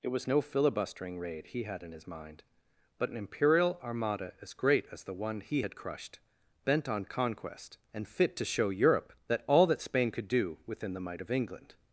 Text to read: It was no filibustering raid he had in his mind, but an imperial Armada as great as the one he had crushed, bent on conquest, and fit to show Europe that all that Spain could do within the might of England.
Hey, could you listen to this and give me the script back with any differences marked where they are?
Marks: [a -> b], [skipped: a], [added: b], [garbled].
It was no filibustering raid he had in his mind, but an imperial Armada as great as the one he had crushed, bent on conquest, and fit to show Europe that all that Spain could do within the might of England.